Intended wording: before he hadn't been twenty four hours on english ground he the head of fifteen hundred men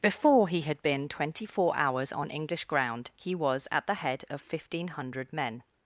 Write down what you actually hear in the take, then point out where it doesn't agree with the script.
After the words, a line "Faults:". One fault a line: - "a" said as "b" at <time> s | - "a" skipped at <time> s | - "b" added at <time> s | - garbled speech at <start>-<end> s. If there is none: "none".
before he had been twenty four hours on english ground he was at the head of fifteen hundred men
Faults:
- "hadn't" said as "had" at 0.6 s
- "was at" added at 3.4 s